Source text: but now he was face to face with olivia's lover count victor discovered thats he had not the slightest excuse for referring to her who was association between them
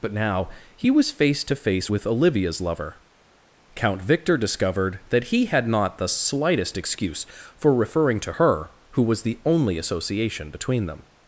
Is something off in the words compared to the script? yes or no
yes